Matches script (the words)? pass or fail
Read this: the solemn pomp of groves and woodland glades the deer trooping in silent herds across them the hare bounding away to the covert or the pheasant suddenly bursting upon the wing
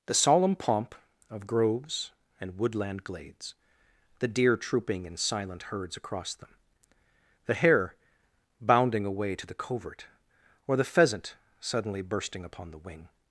pass